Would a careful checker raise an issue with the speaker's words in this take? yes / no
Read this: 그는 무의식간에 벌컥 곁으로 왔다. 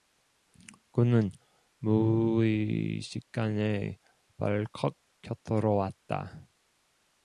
no